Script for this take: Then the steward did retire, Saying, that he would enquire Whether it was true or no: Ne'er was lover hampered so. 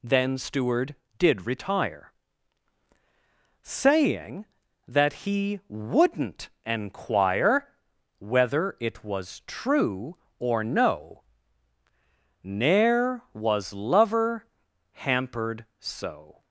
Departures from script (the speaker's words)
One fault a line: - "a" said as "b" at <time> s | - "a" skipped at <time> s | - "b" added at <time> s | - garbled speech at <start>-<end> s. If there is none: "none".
- "the" skipped at 0.4 s
- "would" said as "wouldn't" at 5.7 s